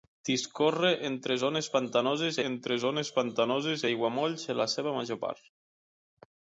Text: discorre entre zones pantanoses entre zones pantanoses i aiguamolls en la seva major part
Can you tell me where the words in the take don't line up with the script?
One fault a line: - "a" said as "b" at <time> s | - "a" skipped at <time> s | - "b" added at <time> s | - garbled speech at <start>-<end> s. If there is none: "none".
none